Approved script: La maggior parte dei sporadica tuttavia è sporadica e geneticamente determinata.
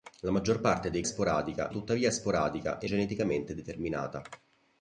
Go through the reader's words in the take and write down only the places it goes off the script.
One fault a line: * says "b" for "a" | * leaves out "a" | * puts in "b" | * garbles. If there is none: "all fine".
all fine